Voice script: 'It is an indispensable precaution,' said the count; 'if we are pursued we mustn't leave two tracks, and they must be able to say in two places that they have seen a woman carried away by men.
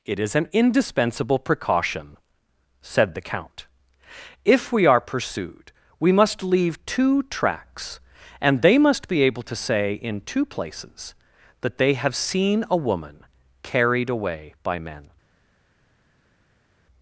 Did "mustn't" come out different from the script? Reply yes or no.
yes